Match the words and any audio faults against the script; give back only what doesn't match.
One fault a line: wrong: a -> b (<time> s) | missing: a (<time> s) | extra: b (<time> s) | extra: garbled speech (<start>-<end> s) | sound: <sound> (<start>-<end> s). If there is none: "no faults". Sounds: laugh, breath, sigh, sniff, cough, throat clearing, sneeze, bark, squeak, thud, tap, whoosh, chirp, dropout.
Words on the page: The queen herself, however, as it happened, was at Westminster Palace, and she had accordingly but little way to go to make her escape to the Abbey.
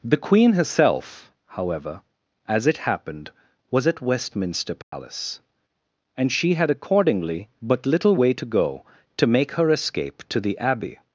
sound: dropout (4.8-4.9 s)